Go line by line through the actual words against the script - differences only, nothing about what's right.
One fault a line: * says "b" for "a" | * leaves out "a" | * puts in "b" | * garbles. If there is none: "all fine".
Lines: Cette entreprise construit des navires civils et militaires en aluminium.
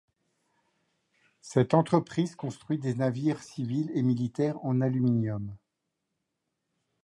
all fine